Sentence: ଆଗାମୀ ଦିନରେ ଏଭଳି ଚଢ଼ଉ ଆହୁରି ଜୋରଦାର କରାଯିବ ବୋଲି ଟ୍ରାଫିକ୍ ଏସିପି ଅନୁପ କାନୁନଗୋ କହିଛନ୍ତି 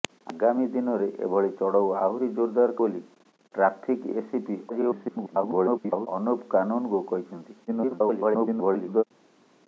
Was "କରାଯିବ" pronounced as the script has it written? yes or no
no